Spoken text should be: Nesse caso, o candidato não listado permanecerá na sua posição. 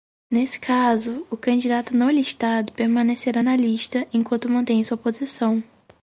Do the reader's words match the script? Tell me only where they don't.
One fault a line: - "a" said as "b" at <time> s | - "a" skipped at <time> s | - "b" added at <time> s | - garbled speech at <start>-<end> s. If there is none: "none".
- "lista enquanto mantém" added at 3.6 s